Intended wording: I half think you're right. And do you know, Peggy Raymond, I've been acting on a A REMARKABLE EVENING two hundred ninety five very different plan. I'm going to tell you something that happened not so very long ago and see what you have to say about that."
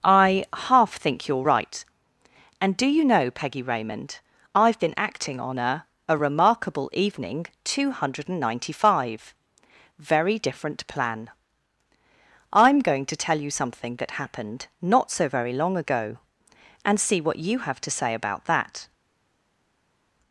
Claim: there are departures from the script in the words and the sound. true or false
false